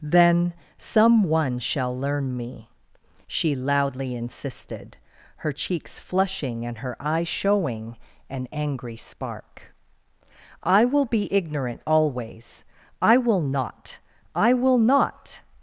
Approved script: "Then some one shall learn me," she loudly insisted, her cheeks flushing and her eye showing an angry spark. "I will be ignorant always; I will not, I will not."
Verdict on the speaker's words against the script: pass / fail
pass